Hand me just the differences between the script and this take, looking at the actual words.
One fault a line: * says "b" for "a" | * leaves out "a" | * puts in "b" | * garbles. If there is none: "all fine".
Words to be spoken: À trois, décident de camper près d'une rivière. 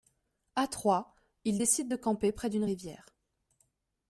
* puts in "ils"